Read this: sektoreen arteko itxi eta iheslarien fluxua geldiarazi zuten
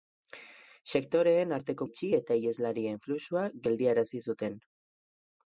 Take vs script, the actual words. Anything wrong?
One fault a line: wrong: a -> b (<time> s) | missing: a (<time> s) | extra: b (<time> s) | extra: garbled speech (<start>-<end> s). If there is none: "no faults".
no faults